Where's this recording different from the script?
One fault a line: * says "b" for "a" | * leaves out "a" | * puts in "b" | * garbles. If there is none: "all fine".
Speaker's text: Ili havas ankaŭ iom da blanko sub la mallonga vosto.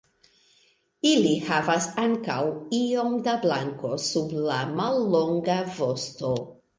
all fine